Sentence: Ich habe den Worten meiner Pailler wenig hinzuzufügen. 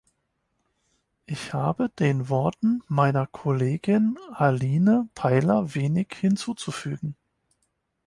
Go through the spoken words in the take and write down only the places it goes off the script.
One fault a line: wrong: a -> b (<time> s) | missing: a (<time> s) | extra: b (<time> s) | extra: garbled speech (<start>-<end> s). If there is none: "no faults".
extra: Kollegin Aline (3.3 s)